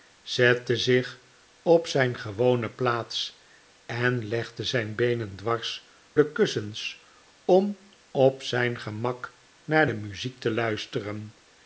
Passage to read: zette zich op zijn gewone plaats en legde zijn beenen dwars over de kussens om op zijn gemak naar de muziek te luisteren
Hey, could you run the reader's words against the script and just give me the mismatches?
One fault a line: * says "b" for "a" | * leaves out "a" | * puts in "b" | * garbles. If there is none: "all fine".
* leaves out "over"